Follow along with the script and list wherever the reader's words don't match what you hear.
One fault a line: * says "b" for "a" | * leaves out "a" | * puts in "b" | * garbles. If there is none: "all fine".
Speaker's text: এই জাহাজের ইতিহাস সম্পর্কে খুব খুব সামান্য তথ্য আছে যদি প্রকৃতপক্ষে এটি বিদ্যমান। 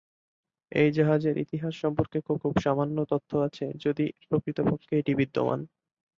all fine